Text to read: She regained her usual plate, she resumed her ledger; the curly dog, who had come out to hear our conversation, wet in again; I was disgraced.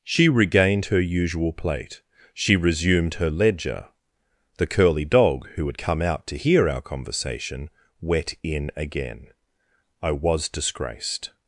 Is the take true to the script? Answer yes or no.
yes